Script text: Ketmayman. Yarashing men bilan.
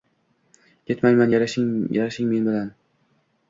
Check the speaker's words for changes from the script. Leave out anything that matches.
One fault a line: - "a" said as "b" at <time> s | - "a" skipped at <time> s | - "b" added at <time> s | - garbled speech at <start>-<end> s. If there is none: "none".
none